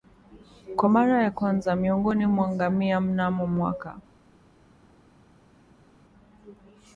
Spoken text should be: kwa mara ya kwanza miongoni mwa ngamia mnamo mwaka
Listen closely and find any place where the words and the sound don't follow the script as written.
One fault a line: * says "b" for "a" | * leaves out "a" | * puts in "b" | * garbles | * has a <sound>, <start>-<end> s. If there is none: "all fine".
all fine